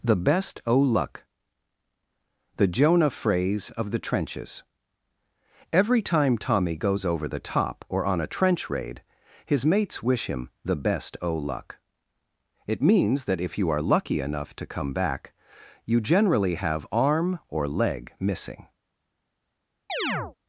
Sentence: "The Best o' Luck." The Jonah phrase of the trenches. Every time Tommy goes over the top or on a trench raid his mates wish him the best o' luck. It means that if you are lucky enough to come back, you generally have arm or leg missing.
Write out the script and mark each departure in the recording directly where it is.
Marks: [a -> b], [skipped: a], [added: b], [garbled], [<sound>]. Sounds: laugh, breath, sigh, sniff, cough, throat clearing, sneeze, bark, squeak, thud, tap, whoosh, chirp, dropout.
"The Best o' Luck." The Jonah phrase of the trenches. Every time Tommy goes over the top or on a trench raid his mates wish him the best o' luck. It means that if you are lucky enough to come back, you generally have arm or leg missing. [chirp]